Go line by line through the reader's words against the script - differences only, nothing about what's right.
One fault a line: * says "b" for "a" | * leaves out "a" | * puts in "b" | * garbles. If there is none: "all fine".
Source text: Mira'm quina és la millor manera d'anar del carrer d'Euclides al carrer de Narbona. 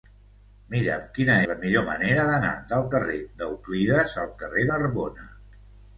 * leaves out "és"
* leaves out "de"